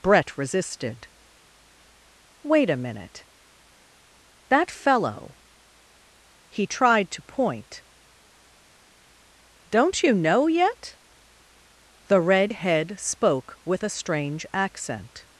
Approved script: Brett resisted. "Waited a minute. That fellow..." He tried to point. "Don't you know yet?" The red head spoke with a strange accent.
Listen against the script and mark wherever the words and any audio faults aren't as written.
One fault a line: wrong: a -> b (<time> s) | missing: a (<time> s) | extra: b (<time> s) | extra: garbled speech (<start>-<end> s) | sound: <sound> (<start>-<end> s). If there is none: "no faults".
wrong: Waited -> Wait (2.4 s)